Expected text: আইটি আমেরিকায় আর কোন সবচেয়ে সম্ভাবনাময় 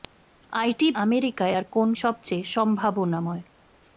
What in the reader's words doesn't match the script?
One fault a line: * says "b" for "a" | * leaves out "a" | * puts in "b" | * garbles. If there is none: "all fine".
all fine